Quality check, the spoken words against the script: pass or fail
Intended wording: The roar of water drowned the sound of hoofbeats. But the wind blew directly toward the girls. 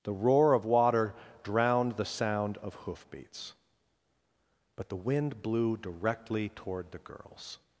pass